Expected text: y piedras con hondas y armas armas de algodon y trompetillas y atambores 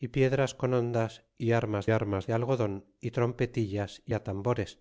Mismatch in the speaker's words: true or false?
false